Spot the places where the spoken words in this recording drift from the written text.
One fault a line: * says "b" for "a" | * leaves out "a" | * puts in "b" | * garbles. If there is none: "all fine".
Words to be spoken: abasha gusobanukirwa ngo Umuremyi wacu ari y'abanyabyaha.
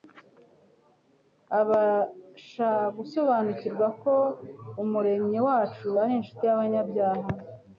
* says "ko" for "ngo"
* puts in "inshuti"